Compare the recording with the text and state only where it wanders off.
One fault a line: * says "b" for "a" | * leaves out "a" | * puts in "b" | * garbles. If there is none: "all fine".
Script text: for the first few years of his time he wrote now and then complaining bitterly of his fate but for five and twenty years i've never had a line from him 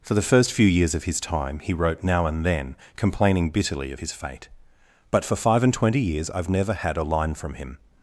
all fine